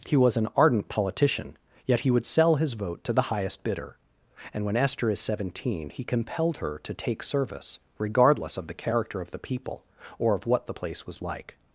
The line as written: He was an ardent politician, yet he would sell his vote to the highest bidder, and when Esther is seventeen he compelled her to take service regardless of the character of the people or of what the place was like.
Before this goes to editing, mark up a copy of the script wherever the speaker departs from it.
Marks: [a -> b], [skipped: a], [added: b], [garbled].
He was an ardent politician, yet he would sell his vote to the highest bidder, and when Esther is seventeen he compelled her to take service regardless of the character of the people or of what the place was like.